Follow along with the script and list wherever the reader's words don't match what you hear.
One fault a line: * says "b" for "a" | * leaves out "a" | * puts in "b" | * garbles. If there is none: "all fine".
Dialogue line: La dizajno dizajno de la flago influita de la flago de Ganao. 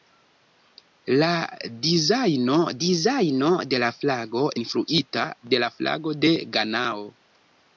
all fine